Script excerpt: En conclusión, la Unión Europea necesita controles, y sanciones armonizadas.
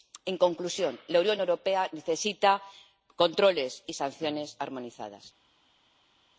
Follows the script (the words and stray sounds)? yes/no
yes